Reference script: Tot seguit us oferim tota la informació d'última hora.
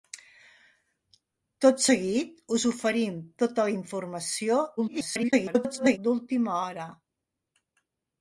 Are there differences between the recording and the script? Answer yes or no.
yes